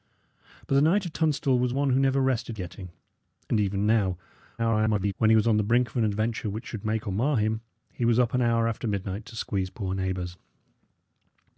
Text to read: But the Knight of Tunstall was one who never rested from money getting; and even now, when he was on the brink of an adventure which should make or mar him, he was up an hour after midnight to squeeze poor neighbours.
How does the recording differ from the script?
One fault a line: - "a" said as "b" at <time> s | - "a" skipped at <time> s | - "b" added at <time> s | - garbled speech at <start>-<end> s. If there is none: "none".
- "from money" skipped at 2.6 s
- garbled speech at 4.6-5.1 s